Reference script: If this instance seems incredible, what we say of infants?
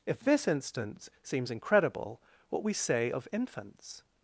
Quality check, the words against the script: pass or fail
pass